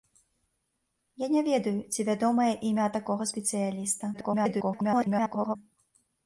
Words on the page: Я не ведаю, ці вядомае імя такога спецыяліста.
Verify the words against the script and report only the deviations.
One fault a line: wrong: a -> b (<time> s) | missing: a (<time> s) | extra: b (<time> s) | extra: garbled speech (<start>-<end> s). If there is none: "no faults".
extra: garbled speech (4.1-5.6 s)